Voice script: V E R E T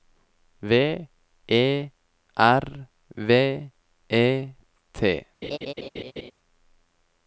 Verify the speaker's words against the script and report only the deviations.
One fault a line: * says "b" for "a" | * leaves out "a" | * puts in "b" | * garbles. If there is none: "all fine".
* puts in "V"